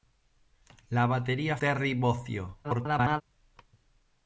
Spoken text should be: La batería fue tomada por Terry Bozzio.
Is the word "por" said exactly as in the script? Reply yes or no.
no